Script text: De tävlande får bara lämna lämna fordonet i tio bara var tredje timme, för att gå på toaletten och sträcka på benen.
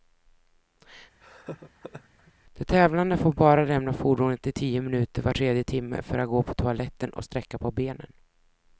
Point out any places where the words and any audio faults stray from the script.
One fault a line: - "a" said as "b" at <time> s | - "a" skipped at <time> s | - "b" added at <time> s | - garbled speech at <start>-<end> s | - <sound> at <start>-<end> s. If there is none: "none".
- laugh at 1.2-2.3 s
- "lämna" skipped at 3.9 s
- "bara" said as "minuter" at 4.8 s